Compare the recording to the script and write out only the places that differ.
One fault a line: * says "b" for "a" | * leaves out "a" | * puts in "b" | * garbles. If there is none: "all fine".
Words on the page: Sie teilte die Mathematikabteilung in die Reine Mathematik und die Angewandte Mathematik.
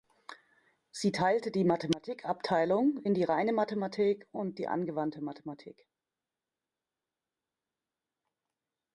all fine